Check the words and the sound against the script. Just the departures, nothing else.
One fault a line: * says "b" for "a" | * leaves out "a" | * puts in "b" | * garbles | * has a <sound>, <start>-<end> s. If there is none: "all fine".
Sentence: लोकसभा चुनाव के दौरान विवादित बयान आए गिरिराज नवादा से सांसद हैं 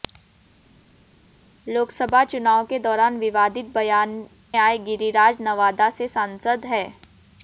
all fine